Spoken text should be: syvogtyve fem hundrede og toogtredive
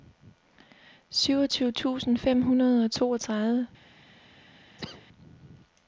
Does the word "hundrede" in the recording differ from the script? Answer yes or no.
no